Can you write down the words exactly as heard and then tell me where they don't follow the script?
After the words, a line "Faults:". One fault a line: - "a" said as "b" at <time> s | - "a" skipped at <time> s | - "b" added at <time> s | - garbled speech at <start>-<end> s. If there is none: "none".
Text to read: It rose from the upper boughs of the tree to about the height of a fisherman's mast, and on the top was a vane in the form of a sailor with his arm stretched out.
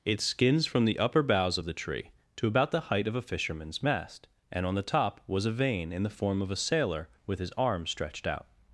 It skins from the upper boughs of the tree to about the height of a fisherman's mast, and on the top was a vane in the form of a sailor with his arm stretched out.
Faults:
- "rose" said as "skins" at 0.2 s